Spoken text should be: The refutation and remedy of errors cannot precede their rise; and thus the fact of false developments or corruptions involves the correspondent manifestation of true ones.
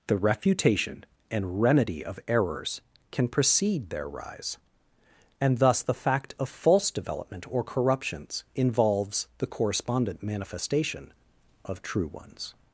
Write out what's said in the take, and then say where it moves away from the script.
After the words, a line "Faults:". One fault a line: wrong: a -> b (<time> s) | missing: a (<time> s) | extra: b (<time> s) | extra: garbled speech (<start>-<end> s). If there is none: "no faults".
The refutation and remedy of errors can precede their rise; and thus the fact of false development or corruptions involves the correspondent manifestation of true ones.
Faults:
wrong: cannot -> can (3.1 s)
wrong: developments -> development (6.9 s)